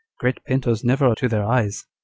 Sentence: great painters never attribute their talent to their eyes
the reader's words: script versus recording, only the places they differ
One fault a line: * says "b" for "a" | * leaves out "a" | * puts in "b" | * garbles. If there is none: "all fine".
* leaves out "attribute their talent"